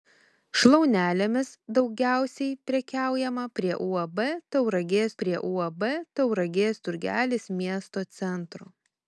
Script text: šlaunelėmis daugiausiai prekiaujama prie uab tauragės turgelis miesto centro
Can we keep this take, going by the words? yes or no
no